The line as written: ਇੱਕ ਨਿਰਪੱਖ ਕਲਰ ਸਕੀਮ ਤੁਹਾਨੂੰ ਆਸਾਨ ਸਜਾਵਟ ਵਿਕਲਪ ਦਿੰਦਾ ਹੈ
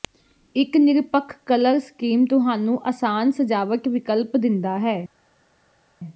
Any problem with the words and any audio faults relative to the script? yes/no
no